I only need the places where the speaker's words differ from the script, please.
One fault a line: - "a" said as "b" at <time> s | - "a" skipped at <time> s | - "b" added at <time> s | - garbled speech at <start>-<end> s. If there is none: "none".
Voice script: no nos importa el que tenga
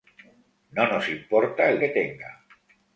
none